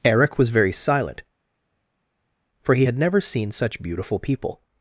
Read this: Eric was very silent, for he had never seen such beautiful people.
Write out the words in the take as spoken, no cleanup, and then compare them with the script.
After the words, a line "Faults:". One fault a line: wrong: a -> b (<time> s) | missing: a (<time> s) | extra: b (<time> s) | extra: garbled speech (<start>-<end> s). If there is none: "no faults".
Eric was very silent, for he had never seen such beautiful people.
Faults:
no faults